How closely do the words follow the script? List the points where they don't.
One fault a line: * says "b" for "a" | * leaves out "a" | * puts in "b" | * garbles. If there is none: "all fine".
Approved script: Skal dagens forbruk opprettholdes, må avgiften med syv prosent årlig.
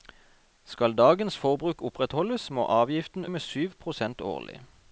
all fine